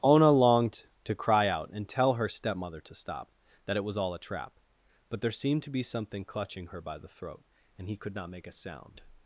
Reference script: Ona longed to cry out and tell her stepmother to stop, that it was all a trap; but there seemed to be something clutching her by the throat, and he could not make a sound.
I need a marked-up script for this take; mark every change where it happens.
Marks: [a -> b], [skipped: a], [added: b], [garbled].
Ona longed to cry out and tell her stepmother to stop, that it was all a trap; but there seemed to be something clutching her by the throat, and he could not make a sound.